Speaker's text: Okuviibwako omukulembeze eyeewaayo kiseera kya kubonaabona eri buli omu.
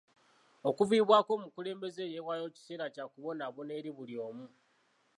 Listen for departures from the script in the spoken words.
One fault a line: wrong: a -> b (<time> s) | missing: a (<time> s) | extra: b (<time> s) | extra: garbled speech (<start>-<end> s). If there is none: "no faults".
no faults